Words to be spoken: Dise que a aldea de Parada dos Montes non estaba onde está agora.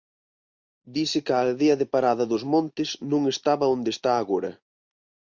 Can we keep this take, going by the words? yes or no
yes